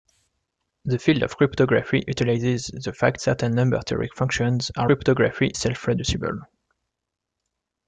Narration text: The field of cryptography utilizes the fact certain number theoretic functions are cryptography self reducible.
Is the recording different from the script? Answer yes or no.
no